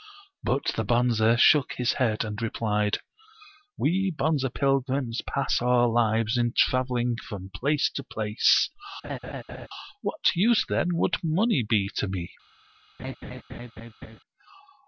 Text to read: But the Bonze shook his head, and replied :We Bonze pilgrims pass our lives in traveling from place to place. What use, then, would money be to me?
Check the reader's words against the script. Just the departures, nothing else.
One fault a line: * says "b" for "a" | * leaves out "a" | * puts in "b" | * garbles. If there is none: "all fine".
all fine